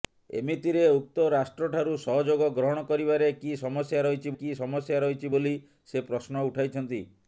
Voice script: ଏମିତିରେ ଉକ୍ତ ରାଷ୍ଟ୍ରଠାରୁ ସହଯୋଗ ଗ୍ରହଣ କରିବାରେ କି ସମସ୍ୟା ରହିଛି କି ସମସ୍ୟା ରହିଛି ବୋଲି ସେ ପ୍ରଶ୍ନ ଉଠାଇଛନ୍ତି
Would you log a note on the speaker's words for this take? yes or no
no